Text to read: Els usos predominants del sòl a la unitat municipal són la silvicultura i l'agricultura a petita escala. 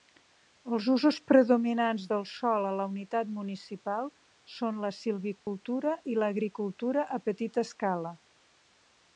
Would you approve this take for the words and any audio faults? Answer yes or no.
no